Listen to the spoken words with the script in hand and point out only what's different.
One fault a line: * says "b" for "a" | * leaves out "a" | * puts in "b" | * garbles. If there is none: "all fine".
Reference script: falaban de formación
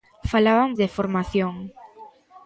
all fine